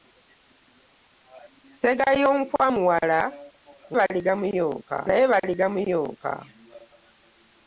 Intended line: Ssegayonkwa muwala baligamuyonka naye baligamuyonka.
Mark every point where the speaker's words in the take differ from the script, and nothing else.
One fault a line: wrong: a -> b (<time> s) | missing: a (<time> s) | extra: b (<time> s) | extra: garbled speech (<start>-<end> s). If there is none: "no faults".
no faults